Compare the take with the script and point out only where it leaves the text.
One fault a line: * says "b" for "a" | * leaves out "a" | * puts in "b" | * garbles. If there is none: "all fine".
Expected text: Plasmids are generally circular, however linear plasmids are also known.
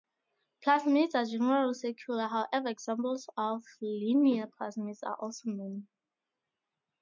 * puts in "examples of"